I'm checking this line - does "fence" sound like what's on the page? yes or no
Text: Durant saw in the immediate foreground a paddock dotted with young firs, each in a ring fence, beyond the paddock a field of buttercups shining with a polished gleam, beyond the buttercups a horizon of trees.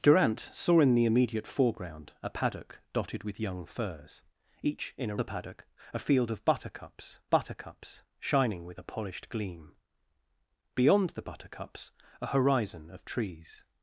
no